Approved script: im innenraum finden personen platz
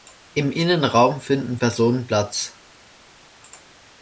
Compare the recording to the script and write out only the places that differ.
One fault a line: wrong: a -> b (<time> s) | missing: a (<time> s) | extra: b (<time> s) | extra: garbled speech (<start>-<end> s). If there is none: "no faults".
no faults